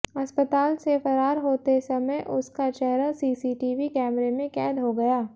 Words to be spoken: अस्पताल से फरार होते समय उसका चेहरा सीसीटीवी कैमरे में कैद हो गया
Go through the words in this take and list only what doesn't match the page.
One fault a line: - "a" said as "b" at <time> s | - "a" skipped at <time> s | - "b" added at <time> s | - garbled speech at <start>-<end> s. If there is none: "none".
none